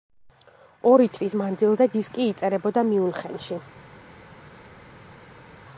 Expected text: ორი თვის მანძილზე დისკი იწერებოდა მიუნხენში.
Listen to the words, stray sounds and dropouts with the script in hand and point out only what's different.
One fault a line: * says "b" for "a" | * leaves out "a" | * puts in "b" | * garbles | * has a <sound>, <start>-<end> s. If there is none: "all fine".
all fine